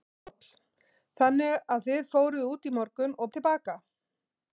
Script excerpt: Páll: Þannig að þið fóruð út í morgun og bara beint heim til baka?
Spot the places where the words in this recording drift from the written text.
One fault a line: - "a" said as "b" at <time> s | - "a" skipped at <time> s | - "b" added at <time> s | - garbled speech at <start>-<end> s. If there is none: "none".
- "bara beint heim" skipped at 3.3 s